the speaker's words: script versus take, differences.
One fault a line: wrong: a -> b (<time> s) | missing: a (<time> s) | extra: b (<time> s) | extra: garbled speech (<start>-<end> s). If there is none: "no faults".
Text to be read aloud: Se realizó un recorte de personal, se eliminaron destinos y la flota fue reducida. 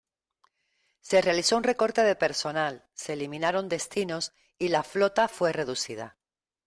no faults